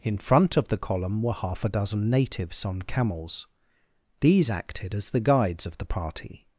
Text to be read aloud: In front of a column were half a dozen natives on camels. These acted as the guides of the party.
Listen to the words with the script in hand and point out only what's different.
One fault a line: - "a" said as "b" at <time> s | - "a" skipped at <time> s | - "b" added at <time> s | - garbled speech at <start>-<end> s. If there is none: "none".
- "a" said as "the" at 0.7 s